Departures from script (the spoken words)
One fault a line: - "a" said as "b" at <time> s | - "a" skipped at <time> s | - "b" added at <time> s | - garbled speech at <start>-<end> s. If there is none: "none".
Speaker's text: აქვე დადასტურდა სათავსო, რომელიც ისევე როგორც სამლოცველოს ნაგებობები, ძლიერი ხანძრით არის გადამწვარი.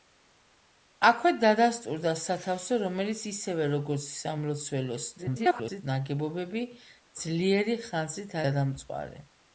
- garbled speech at 5.2-5.8 s
- "არის" skipped at 8.4 s